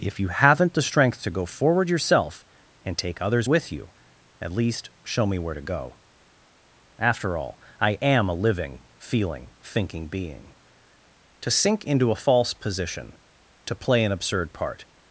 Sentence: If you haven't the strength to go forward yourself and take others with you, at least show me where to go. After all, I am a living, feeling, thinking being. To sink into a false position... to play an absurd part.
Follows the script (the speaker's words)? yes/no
yes